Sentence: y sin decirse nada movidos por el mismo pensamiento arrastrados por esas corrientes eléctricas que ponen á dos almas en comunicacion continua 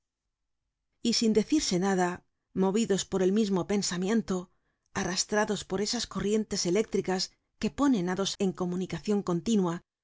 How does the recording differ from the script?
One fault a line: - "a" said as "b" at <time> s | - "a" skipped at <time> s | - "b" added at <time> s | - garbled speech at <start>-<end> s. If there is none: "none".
- "almas" skipped at 8.3 s